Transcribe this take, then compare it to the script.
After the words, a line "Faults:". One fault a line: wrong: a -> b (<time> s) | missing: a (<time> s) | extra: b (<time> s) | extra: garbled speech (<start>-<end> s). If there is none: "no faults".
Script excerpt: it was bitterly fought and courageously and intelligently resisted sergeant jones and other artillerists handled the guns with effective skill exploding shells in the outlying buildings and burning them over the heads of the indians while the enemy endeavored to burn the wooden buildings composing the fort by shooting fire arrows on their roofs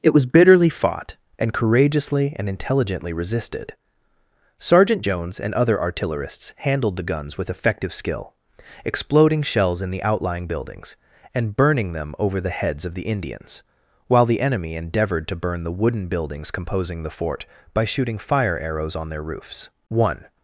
it was bitterly fought and courageously and intelligently resisted sergeant jones and other artillerists handled the guns with effective skill exploding shells in the outlying buildings and burning them over the heads of the indians while the enemy endeavored to burn the wooden buildings composing the fort by shooting fire arrows on their roofs one
Faults:
extra: one (19.9 s)